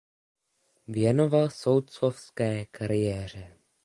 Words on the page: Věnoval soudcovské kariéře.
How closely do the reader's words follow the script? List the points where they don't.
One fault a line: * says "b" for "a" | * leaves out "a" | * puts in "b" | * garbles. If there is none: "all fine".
all fine